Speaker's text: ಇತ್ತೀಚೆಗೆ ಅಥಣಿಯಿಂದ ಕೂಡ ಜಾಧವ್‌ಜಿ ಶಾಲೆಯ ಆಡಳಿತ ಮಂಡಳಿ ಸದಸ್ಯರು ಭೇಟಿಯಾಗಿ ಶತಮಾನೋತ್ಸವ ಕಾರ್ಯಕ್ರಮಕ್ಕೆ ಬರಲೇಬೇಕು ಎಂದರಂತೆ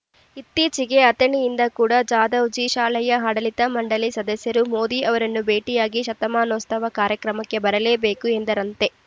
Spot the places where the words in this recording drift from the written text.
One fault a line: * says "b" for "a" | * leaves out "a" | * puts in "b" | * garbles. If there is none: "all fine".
* puts in "ಮೋದಿ ಅವರನ್ನು"